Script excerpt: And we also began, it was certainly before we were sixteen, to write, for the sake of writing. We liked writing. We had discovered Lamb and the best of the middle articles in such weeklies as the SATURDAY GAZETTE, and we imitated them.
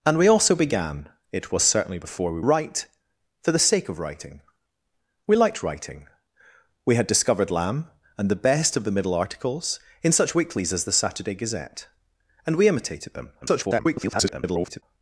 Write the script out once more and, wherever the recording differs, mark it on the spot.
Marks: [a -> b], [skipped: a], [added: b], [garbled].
And we also began, it was certainly before we [skipped: were sixteen, to] write, for the sake of writing. We liked writing. We had discovered Lamb and the best of the middle articles in such weeklies as the SATURDAY GAZETTE, and we imitated them. [garbled]